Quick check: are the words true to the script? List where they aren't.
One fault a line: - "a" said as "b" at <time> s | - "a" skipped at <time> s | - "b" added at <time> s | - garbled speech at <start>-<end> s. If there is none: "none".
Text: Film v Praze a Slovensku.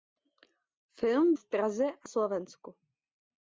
none